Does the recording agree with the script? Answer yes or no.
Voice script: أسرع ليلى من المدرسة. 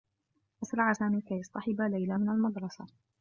no